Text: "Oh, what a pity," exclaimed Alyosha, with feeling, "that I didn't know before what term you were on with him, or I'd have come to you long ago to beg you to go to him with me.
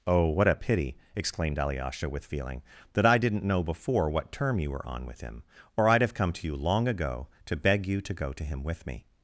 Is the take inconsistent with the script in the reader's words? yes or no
no